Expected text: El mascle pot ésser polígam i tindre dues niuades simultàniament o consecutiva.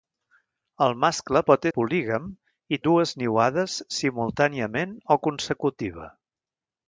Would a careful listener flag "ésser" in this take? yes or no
yes